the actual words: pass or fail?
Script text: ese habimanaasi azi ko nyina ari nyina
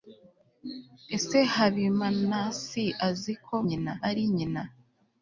pass